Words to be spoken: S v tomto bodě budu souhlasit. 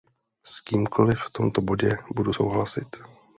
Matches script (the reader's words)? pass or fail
fail